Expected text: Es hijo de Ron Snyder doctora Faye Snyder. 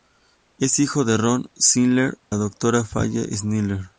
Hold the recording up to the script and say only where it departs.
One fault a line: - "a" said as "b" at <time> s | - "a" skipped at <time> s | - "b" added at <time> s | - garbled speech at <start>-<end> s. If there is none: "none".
none